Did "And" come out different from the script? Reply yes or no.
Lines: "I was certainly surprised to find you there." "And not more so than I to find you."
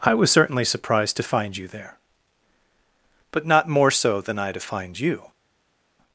yes